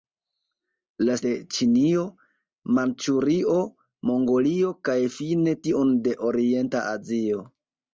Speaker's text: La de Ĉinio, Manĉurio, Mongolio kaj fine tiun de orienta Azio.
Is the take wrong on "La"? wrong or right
right